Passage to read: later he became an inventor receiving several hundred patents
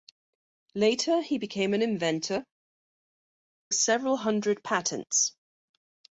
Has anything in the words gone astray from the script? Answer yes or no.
yes